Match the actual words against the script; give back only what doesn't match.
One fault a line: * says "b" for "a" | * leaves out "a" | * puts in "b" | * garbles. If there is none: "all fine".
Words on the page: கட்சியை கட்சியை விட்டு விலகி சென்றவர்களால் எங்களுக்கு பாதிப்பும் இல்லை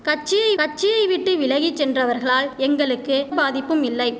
all fine